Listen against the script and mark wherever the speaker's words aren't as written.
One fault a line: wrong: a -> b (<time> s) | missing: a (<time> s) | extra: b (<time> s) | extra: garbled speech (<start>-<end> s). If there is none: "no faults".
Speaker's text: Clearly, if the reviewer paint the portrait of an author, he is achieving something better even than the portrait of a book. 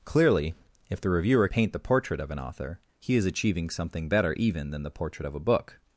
no faults